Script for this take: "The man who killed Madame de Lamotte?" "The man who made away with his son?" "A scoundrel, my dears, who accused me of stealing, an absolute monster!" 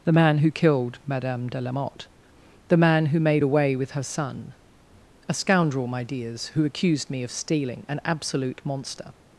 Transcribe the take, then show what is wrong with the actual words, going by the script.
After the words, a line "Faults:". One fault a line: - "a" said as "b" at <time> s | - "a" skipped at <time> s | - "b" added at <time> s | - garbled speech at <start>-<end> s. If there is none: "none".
"The man who killed Madame de Lamotte?" "The man who made away with her son?" "A scoundrel, my dears, who accused me of stealing, an absolute monster!"
Faults:
- "his" said as "her" at 3.9 s